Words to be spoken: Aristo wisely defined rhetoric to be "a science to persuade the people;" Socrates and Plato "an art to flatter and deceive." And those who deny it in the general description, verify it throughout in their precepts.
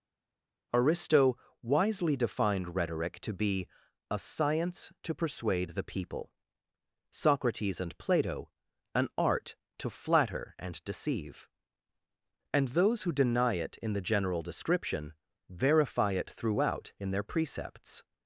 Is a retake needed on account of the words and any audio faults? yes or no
no